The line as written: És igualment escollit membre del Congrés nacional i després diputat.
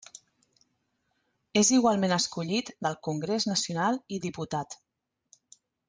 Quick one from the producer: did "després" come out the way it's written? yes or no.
no